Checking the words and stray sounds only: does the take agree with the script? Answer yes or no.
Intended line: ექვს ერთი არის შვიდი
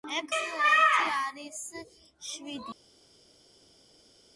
yes